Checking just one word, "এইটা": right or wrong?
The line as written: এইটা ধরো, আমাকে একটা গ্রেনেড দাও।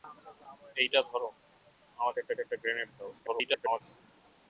right